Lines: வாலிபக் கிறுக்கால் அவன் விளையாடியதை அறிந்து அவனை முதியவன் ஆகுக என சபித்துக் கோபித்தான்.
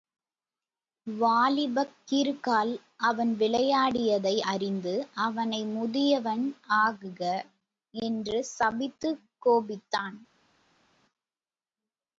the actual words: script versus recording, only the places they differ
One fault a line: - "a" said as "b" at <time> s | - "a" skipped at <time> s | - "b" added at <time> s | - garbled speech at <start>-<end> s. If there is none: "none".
- "என" said as "என்று" at 7.9 s